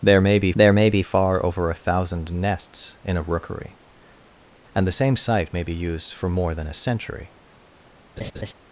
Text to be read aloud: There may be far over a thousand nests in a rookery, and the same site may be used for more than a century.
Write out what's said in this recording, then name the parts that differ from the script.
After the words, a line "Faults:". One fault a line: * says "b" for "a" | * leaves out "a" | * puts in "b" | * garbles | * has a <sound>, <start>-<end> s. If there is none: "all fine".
There may be there may be far over a thousand nests in a rookery, and the same site may be used for more than a century.
Faults:
* puts in "there may be"
* has a laugh, 8.2-8.5 s